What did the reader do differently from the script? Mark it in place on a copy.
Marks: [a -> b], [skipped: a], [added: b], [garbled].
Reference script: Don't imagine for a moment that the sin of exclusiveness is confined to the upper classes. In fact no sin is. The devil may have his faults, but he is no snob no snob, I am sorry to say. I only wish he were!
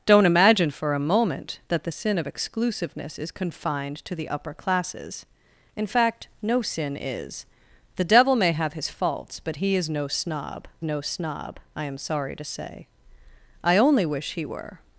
Don't imagine for a moment that the sin of exclusiveness is confined to the upper classes. In fact no sin is. The devil may have his faults, but he is no snob no snob, I am sorry to say. I only wish he were!